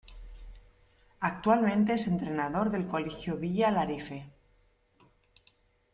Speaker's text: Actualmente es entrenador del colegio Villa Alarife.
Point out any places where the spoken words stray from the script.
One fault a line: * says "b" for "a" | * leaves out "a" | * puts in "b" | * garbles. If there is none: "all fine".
all fine